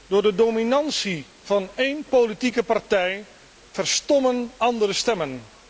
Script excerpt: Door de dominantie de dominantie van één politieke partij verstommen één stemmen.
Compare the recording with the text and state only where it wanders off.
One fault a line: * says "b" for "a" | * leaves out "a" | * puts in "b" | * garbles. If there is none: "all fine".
* leaves out "de dominantie"
* says "andere" for "één"